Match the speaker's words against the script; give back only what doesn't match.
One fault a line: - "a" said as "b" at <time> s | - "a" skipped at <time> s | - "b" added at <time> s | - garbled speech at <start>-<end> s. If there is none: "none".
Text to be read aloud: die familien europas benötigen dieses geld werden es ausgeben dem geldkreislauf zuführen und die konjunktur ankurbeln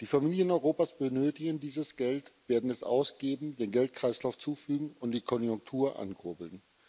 none